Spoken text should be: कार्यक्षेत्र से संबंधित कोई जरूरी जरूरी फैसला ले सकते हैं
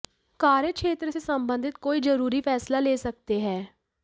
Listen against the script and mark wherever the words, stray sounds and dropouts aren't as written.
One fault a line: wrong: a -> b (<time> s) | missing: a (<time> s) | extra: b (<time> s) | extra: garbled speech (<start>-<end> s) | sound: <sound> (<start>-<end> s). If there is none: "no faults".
missing: जरूरी (2.4 s)